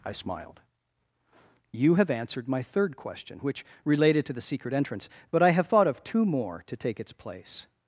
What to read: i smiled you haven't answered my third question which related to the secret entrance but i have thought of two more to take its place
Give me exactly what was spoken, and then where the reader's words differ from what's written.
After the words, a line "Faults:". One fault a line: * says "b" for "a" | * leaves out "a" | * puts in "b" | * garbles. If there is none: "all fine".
i smiled you have answered my third question which related to the secret entrance but i have thought of two more to take its place
Faults:
* says "have" for "haven't"